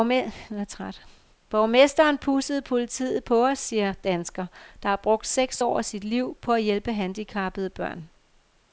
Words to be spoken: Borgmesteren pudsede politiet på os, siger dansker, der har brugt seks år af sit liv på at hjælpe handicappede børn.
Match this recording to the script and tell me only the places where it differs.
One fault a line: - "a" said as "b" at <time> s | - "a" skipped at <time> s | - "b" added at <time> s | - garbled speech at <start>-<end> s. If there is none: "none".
none